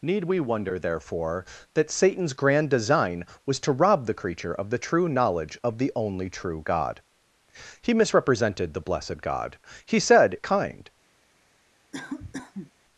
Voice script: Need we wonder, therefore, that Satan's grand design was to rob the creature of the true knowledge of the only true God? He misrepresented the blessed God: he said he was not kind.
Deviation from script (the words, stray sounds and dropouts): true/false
true